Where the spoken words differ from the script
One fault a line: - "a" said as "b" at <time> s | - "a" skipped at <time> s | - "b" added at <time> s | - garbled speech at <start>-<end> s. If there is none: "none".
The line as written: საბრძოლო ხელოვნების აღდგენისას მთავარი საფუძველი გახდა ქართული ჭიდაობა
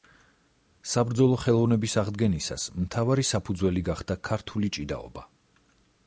none